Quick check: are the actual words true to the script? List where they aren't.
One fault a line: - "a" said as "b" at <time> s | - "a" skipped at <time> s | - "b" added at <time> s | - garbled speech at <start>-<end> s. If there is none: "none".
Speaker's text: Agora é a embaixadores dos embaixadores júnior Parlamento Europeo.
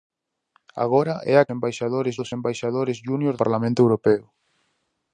none